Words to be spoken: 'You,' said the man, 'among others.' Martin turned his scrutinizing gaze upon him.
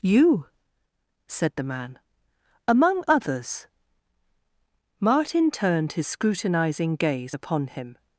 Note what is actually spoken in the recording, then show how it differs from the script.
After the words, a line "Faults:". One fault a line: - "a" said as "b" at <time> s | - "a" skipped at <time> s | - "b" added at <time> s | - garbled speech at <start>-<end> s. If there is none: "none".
'You,' said the man, 'among others.' Martin turned his scrutinizing gaze upon him.
Faults:
none